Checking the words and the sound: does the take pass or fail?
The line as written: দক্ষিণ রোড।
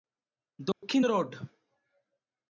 fail